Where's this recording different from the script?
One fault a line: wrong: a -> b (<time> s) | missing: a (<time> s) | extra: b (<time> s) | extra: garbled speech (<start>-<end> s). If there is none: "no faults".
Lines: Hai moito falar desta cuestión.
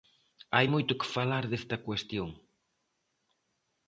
extra: que (1.0 s)